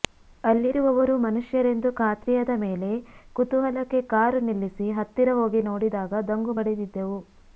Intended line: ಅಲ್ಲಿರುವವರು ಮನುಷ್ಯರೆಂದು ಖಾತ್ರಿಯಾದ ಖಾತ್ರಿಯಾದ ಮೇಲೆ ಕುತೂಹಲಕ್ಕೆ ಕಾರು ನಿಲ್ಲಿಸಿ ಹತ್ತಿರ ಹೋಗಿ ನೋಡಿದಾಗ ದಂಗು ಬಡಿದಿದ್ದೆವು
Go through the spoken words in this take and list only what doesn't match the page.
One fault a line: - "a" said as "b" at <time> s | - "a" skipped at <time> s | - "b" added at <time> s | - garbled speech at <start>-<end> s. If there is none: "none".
- "ಖಾತ್ರಿಯಾದ" skipped at 2.5 s